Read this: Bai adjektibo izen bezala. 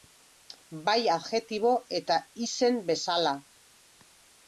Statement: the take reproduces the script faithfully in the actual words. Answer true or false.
false